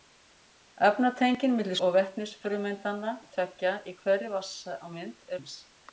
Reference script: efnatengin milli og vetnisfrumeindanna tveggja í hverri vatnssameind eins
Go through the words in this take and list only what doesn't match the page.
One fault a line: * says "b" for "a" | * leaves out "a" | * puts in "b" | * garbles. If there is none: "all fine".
all fine